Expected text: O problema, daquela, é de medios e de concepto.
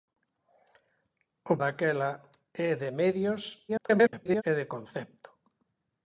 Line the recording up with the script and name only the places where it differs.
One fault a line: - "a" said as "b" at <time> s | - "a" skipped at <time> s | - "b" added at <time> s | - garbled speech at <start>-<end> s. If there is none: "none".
- "problema" skipped at 1.6 s
- garbled speech at 3.7-4.4 s